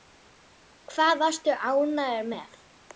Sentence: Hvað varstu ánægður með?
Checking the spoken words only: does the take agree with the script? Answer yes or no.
yes